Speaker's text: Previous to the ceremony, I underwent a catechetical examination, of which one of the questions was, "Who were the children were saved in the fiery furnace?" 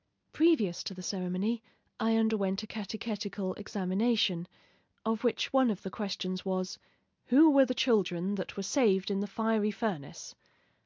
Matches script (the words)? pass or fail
fail